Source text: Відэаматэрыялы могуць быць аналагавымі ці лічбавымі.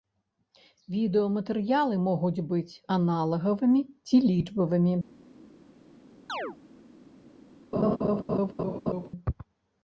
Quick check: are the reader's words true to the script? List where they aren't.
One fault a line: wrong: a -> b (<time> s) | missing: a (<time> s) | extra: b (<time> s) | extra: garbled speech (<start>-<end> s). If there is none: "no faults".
no faults